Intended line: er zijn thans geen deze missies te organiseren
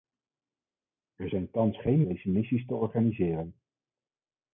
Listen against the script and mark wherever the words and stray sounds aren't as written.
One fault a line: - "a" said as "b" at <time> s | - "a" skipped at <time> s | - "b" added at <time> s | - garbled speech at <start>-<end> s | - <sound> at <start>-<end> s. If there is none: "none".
none